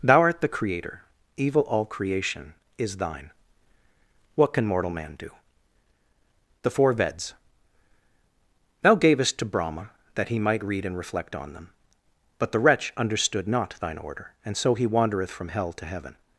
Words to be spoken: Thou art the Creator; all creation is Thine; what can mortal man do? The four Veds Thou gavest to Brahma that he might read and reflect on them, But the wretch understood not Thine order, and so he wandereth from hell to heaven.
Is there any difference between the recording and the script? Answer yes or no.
yes